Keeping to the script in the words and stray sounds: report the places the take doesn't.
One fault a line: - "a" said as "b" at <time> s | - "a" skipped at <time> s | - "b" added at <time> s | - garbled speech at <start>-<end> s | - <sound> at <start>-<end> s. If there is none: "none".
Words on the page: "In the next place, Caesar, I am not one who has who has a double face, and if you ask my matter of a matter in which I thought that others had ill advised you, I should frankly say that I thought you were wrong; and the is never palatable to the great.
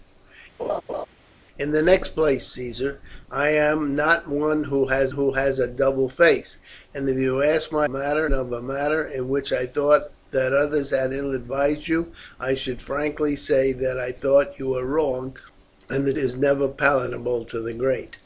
- laugh at 0.6-1.1 s